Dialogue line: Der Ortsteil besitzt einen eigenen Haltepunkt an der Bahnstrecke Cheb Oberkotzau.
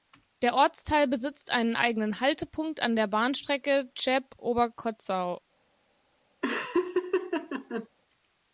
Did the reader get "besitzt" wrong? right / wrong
right